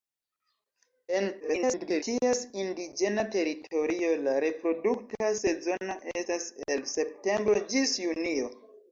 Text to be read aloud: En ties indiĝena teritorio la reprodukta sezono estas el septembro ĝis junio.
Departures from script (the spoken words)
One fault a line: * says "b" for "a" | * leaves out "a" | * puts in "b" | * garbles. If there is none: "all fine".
* garbles